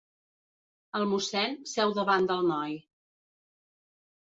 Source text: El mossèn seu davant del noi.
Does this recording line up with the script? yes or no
yes